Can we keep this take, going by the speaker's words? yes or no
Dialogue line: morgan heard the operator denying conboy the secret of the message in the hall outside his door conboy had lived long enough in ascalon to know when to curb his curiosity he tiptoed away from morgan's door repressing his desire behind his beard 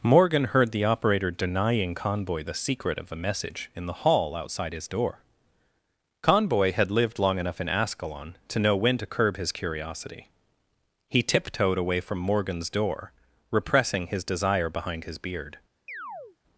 no